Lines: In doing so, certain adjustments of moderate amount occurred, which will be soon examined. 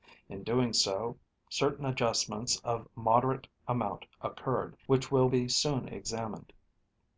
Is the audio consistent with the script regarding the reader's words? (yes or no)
yes